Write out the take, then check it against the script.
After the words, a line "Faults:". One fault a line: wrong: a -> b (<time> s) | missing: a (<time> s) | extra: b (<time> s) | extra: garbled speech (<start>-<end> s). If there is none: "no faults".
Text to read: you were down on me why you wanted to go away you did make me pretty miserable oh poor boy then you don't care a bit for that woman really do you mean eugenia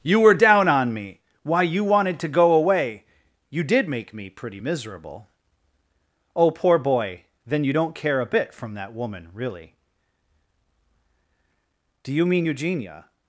you were down on me why you wanted to go away you did make me pretty miserable oh poor boy then you don't care a bit from that woman really do you mean eugenia
Faults:
wrong: for -> from (8.5 s)